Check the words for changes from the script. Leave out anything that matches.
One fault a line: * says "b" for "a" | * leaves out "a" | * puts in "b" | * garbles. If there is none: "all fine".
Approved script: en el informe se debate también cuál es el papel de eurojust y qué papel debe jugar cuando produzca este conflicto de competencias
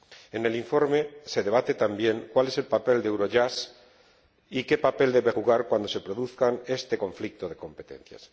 * puts in "se"